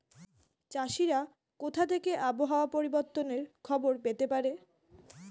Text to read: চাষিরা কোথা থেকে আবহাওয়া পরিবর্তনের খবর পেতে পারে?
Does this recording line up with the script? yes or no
yes